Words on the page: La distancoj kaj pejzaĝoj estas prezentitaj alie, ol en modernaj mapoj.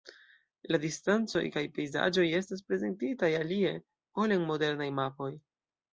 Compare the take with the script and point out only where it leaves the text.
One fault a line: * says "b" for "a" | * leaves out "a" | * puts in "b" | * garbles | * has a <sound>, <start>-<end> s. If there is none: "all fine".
all fine